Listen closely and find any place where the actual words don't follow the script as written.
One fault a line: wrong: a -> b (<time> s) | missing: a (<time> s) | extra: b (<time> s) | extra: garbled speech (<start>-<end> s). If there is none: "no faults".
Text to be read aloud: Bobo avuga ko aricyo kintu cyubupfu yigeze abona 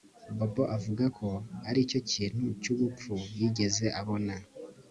no faults